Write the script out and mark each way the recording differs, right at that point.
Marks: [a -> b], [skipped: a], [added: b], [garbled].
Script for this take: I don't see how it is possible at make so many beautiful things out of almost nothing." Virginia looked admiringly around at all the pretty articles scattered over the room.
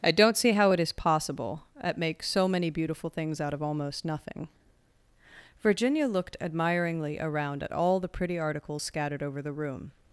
I don't see how it is possible at make so many beautiful things out of almost nothing." Virginia looked admiringly around at all the pretty articles scattered over the room.